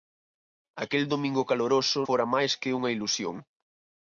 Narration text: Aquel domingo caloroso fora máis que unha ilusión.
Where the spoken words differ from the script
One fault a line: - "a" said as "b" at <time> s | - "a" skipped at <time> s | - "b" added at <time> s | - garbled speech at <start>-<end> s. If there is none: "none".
none